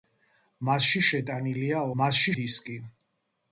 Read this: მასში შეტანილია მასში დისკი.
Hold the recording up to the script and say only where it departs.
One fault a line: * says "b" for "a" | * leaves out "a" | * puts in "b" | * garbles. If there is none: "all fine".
all fine